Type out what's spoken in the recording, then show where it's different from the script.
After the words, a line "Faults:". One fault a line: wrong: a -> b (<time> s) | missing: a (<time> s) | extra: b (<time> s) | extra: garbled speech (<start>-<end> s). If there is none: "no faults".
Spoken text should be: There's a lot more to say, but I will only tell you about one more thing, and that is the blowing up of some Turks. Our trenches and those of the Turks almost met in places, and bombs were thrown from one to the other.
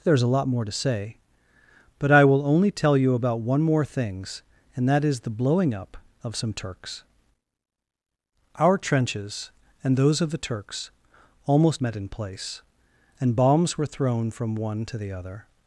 There's a lot more to say, but I will only tell you about one more things, and that is the blowing up of some Turks. Our trenches and those of the Turks almost met in place, and bombs were thrown from one to the other.
Faults:
wrong: thing -> things (3.9 s)
wrong: places -> place (12.1 s)